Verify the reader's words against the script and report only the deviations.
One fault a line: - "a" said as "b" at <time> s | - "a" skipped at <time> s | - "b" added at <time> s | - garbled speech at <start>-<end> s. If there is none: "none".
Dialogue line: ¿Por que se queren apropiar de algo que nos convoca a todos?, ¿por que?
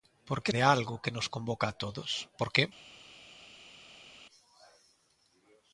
- "se queren apropiar" skipped at 0.5 s